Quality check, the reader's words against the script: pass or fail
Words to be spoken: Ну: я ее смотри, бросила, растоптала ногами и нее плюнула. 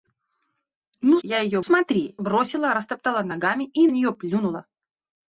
pass